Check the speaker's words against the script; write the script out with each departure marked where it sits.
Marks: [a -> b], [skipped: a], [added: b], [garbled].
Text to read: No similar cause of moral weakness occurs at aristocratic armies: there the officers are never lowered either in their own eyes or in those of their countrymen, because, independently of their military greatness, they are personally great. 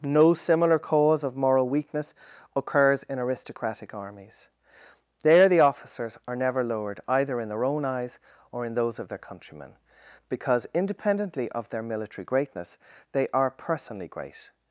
No similar cause of moral weakness occurs [at -> in] aristocratic armies: there the officers are never lowered either in their own eyes or in those of their countrymen, because, independently of their military greatness, they are personally great.